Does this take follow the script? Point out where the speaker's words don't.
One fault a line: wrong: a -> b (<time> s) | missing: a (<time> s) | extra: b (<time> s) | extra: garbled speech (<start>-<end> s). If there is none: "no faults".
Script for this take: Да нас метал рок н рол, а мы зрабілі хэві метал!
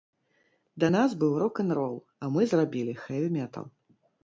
wrong: метал -> быў (1.2 s)